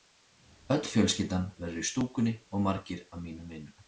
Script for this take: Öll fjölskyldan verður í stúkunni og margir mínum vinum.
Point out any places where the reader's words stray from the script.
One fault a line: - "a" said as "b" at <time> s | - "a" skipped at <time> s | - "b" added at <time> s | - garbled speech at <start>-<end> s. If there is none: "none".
- "af" added at 3.1 s